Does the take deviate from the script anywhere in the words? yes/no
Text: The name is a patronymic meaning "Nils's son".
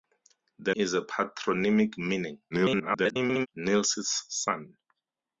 yes